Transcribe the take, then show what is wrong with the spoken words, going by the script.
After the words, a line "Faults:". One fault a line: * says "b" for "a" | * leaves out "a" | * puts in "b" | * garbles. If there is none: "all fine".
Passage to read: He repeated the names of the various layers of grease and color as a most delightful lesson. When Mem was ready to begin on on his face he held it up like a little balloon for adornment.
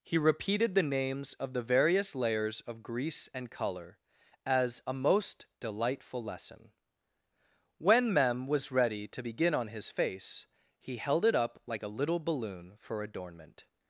He repeated the names of the various layers of grease and color as a most delightful lesson. When Mem was ready to begin on his face he held it up like a little balloon for adornment.
Faults:
* leaves out "on"